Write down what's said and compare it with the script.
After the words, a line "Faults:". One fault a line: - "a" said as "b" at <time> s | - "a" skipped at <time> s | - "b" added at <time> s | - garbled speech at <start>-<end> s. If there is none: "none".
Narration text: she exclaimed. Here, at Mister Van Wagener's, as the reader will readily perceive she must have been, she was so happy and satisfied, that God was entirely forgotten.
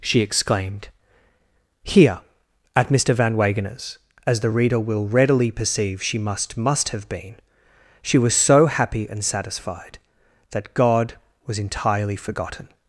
she exclaimed. Here, at Mister Van Wagener's, as the reader will readily perceive she must must have been, she was so happy and satisfied, that God was entirely forgotten.
Faults:
- "must" added at 6.6 s